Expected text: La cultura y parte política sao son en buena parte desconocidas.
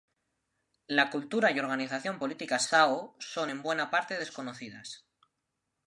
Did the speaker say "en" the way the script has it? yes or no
yes